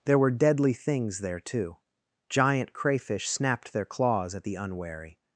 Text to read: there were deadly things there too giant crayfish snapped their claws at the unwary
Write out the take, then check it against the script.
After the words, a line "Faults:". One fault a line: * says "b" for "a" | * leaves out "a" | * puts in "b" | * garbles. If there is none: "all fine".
there were deadly things there too giant crayfish snapped their claws at the unwary
Faults:
all fine